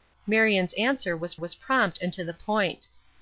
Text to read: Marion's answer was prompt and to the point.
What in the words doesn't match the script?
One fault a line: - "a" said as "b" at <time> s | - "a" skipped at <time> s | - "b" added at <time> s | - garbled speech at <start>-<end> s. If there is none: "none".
- "was" added at 1.3 s